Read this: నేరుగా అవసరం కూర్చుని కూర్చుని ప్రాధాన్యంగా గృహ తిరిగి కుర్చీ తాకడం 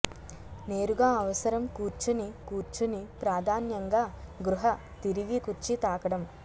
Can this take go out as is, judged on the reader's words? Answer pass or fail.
pass